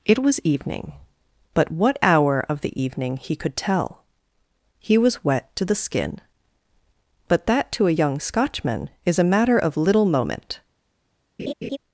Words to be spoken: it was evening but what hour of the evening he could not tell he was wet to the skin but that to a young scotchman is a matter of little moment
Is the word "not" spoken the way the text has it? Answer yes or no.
no